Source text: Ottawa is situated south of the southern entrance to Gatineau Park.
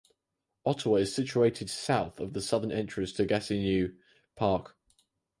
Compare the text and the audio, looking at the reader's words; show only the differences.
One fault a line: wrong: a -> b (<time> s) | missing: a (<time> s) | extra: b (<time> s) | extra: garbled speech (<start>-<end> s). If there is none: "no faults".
no faults